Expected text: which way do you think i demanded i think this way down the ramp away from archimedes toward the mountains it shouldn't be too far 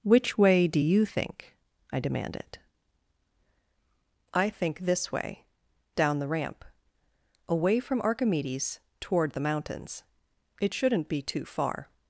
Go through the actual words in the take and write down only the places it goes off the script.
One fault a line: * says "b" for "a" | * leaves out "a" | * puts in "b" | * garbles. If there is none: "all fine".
all fine